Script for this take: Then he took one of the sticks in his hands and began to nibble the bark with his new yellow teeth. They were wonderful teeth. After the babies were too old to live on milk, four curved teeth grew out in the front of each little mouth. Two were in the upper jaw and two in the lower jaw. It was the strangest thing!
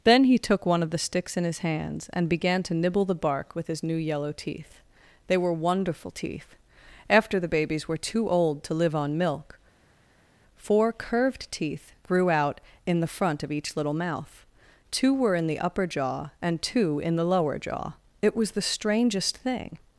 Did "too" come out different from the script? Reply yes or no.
no